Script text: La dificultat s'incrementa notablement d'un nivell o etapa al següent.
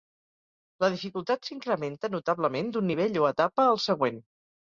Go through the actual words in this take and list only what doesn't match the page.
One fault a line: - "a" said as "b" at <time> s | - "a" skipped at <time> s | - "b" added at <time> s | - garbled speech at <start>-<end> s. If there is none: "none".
none